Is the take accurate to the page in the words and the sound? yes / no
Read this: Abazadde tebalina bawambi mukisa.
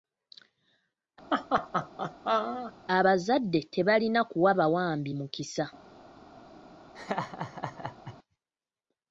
no